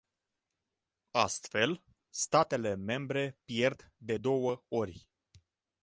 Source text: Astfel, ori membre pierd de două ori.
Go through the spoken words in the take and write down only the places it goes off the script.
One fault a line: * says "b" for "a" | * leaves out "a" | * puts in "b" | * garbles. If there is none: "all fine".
* says "statele" for "ori"